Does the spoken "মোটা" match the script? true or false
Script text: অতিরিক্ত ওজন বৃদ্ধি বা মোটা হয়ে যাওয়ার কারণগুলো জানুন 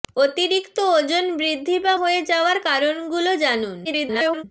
false